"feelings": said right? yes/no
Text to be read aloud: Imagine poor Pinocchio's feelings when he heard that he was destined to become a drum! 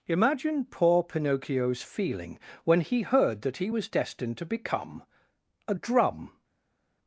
no